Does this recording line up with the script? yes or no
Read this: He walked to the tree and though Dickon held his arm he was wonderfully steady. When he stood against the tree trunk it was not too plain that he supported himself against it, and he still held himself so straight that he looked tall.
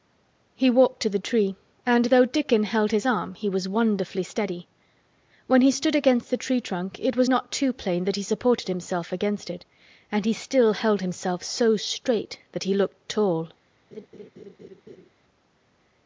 yes